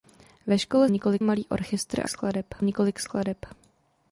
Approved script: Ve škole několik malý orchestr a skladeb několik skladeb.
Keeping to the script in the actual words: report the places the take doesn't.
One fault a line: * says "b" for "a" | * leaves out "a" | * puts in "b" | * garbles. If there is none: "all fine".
all fine